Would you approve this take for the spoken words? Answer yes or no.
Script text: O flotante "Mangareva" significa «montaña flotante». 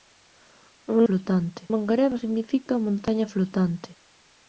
yes